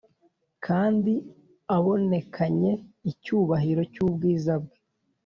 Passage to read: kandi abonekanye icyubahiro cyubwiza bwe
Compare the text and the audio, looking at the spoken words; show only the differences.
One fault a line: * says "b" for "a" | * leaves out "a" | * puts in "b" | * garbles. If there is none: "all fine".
all fine